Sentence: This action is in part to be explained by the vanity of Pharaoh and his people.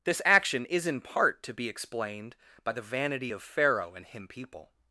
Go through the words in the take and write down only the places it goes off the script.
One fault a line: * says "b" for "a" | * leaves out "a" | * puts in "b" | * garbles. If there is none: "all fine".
* says "him" for "his"